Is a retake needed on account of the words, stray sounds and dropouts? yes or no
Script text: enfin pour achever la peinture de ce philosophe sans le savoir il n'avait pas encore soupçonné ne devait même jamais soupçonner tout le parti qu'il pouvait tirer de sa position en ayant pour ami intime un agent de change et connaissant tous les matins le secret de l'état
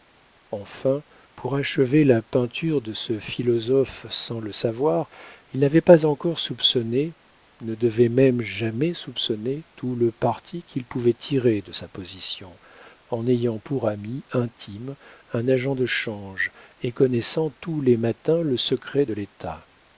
no